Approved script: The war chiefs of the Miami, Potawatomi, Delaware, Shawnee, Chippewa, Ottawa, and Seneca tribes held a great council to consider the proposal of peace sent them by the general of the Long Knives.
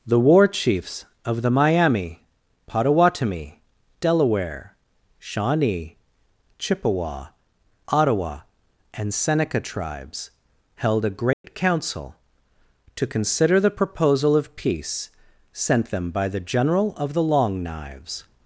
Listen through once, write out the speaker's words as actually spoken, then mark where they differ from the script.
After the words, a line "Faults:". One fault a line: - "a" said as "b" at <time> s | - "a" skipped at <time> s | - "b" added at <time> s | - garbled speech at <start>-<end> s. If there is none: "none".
The war chiefs of the Miami, Potawatomi, Delaware, Shawnee, Chippewa, Ottawa, and Seneca tribes held a great council to consider the proposal of peace sent them by the general of the Long Knives.
Faults:
none